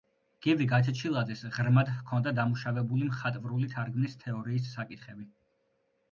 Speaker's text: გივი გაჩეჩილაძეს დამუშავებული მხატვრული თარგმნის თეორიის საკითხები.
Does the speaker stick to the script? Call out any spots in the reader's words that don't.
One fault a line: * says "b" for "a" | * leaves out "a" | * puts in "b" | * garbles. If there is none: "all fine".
* puts in "ღრმად ჰქონდა"